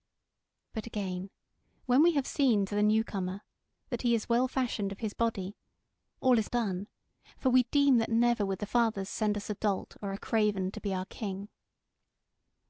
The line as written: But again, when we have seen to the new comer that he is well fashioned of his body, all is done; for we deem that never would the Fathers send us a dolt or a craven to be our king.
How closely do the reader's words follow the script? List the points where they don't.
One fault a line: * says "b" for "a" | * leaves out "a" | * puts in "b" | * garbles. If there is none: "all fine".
all fine